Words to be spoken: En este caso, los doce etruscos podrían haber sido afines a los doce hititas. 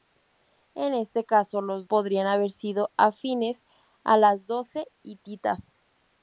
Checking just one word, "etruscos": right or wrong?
wrong